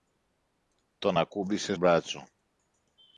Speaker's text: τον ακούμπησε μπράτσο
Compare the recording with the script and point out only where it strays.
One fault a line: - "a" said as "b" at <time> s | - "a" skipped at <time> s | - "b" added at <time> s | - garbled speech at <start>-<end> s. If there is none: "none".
none